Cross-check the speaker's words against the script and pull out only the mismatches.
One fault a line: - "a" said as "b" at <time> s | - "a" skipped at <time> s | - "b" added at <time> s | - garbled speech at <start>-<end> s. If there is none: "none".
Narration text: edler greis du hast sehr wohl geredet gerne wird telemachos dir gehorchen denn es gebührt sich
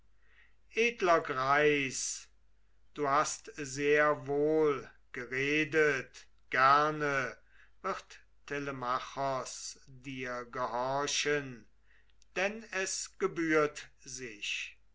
none